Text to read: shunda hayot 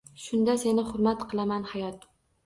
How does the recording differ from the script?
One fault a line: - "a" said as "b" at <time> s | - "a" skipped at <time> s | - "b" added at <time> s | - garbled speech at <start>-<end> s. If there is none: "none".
- "seni hurmat qilaman" added at 0.6 s